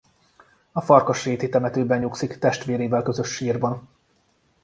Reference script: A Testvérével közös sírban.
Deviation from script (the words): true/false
true